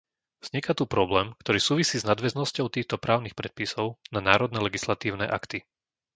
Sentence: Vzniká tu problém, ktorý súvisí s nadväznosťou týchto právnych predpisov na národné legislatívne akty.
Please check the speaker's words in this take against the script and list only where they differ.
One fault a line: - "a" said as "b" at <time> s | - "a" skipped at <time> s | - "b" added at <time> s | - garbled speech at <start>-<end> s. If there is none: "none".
none